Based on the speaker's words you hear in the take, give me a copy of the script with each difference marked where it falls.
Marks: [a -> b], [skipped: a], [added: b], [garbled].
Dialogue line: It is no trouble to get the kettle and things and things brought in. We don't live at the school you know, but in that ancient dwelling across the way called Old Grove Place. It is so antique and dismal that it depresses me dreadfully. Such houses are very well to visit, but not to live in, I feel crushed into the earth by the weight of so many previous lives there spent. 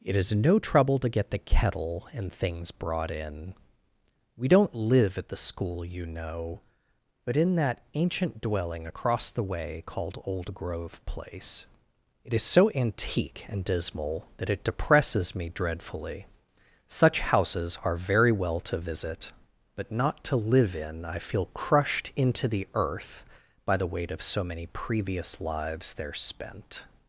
It is no trouble to get the kettle and things [skipped: and things] brought in. We don't live at the school you know, but in that ancient dwelling across the way called Old Grove Place. It is so antique and dismal that it depresses me dreadfully. Such houses are very well to visit, but not to live in, I feel crushed into the earth by the weight of so many previous lives there spent.